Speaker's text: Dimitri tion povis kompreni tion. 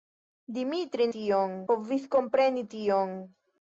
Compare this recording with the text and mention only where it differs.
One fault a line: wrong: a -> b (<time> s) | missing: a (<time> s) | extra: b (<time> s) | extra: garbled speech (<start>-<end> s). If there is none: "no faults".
no faults